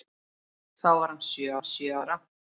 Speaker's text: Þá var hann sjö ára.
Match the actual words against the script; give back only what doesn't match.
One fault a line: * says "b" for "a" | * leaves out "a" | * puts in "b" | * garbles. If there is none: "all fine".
* puts in "hann sjö"